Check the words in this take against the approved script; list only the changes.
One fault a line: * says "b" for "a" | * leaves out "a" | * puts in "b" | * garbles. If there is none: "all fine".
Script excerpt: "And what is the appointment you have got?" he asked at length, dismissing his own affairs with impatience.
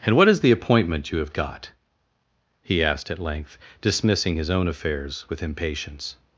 all fine